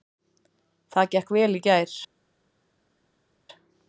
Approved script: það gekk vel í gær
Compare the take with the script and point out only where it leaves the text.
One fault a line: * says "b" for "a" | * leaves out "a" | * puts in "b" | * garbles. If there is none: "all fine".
all fine